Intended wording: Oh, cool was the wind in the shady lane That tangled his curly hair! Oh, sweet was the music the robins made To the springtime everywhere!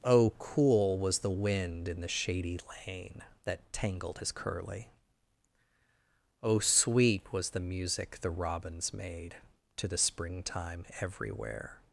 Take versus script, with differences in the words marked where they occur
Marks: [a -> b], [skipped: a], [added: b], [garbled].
Oh, cool was the wind in the shady lane That tangled his curly [skipped: hair!] Oh, sweet was the music the robins made To the springtime everywhere!